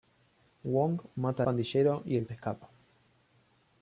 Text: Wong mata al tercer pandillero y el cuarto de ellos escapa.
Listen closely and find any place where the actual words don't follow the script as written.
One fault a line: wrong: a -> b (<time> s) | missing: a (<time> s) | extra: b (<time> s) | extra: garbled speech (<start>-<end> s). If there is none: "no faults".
missing: al tercer (1.4 s)
missing: cuarto de ellos (2.2 s)